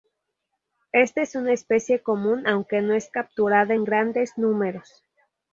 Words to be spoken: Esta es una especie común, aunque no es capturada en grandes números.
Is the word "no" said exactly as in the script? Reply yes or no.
yes